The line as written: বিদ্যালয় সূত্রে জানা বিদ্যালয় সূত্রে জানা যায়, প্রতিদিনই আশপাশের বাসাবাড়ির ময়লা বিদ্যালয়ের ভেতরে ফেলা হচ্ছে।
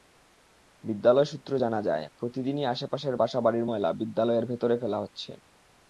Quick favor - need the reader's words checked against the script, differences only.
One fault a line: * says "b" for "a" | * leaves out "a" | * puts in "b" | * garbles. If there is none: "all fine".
* leaves out "বিদ্যালয় সূত্রে জানা"